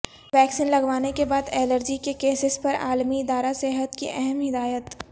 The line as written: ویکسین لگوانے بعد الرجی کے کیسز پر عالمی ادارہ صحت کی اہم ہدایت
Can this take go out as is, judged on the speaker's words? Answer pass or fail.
fail